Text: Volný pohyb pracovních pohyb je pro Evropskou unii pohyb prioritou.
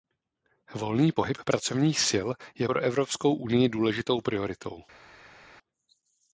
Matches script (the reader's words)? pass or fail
fail